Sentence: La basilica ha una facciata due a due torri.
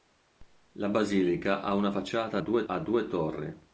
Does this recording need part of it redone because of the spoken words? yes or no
no